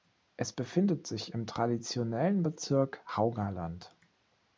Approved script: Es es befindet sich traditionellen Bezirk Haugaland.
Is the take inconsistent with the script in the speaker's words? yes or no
yes